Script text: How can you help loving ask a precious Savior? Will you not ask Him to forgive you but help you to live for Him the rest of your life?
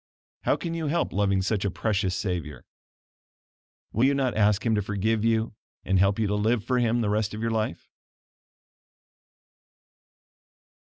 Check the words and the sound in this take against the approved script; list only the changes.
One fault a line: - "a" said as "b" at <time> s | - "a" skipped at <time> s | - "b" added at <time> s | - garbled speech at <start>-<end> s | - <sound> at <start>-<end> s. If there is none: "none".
- "ask" said as "such" at 1.4 s
- "but" said as "and" at 5.8 s